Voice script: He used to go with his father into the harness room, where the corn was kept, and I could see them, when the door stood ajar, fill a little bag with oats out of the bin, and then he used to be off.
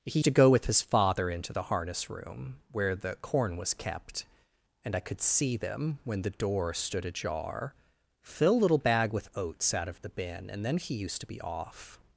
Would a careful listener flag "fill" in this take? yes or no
no